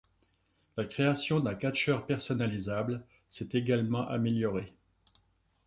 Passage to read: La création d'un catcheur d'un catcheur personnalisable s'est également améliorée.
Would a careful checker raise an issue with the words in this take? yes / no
yes